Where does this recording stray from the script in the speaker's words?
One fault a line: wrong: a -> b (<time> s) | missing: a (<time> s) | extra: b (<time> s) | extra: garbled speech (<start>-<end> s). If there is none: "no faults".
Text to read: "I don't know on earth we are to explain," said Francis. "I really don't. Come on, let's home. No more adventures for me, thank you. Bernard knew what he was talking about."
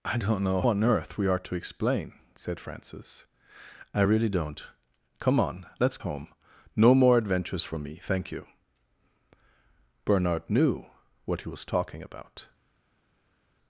no faults